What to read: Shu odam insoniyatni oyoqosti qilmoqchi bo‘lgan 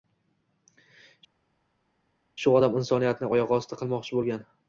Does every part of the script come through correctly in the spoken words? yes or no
yes